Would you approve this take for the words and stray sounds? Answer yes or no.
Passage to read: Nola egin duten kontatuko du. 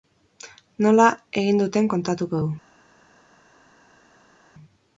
yes